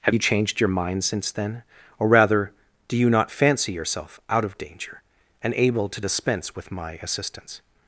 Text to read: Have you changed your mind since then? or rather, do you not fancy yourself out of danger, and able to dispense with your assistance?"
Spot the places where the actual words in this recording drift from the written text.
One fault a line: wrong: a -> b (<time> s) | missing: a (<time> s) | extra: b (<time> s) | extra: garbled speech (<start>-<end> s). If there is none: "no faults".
wrong: your -> my (6.7 s)